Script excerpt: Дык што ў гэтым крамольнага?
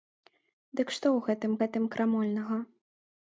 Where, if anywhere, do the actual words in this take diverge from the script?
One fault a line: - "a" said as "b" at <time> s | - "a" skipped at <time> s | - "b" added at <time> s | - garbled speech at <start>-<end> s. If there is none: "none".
- "гэтым" added at 1.6 s